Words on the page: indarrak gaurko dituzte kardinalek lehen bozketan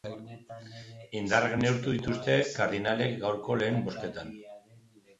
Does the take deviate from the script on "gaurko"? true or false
true